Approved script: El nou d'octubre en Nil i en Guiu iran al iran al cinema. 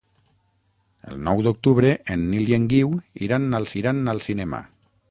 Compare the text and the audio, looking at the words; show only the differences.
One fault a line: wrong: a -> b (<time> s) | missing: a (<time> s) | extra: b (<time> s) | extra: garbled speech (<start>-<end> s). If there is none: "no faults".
no faults